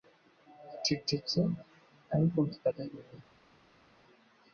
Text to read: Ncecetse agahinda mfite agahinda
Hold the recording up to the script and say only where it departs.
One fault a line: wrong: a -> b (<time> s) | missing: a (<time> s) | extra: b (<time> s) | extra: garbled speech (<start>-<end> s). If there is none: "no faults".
wrong: agahinda -> ariko (2.1 s)